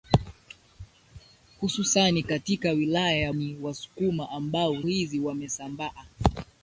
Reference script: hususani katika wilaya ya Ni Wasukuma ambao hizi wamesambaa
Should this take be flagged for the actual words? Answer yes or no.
no